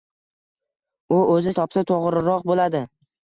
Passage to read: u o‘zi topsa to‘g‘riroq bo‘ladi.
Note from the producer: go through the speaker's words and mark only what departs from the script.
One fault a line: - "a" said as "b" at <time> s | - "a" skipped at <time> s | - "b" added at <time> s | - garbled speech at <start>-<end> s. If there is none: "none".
none